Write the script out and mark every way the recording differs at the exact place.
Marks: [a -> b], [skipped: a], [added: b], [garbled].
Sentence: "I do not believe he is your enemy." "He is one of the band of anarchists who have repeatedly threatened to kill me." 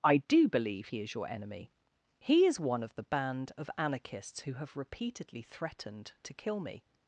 "I do [skipped: not] believe he is your enemy." "He is one of the band of anarchists who have repeatedly threatened to kill me."